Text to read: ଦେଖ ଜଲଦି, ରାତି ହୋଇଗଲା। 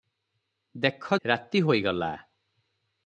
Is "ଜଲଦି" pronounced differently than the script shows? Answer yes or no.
yes